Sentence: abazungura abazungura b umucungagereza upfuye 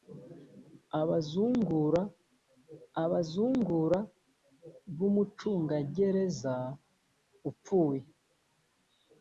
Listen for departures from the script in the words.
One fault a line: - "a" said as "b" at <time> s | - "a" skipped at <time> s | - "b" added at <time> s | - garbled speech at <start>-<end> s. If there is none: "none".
none